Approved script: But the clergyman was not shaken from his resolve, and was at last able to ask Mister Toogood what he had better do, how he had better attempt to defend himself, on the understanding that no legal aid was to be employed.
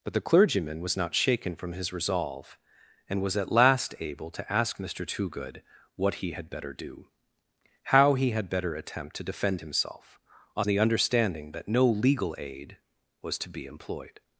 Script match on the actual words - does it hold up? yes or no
yes